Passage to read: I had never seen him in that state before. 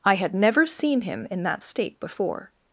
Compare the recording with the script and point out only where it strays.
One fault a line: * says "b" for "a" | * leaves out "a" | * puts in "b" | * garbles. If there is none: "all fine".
all fine